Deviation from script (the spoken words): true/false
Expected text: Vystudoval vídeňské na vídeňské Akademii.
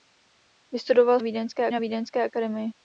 false